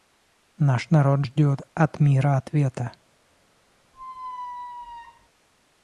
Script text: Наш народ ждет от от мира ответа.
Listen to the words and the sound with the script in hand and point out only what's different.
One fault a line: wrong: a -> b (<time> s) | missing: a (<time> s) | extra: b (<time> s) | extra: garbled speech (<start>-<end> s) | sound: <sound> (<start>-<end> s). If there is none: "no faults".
missing: от (2.0 s)
sound: squeak (3.9-5.3 s)